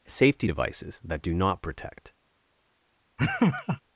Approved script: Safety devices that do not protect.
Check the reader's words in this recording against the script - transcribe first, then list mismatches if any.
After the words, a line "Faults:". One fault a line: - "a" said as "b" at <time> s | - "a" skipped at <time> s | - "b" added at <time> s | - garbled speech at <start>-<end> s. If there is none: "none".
Safety devices that do not protect.
Faults:
none